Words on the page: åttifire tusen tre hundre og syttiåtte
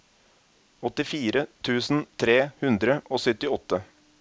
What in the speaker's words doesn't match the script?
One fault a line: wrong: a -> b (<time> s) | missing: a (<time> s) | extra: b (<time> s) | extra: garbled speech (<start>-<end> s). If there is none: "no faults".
no faults